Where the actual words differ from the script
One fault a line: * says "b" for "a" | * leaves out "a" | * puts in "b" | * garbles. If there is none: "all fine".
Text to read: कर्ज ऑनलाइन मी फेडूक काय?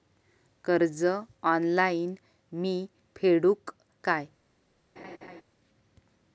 all fine